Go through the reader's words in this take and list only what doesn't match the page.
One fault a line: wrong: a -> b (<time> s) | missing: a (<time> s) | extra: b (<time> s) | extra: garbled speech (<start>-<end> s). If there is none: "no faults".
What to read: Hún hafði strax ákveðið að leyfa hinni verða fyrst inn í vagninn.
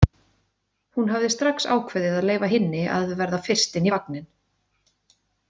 extra: að (3.0 s)